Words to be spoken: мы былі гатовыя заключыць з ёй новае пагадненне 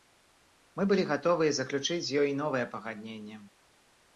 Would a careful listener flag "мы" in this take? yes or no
no